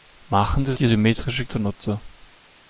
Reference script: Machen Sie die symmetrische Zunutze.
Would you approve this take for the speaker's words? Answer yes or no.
yes